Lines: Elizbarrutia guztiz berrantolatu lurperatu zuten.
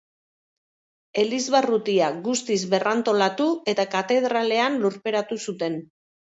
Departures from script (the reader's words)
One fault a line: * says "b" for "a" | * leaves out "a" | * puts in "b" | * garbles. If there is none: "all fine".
* puts in "eta katedralean"